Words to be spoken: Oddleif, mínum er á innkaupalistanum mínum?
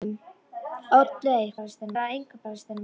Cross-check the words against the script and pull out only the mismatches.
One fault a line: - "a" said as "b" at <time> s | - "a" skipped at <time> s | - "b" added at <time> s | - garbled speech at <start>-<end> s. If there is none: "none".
none